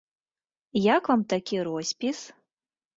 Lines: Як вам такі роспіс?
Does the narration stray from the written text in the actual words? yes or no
no